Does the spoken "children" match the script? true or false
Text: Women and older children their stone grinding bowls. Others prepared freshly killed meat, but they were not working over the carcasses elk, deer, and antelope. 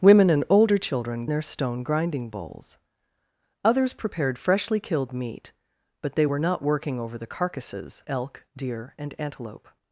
true